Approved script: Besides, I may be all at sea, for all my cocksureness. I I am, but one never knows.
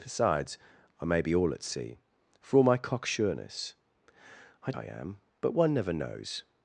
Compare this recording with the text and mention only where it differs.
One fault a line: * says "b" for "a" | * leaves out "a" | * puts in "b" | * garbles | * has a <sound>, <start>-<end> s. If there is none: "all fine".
all fine